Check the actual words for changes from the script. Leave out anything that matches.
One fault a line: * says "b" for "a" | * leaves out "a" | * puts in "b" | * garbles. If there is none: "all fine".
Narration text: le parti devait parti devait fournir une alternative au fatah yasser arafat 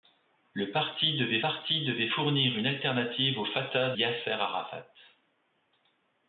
all fine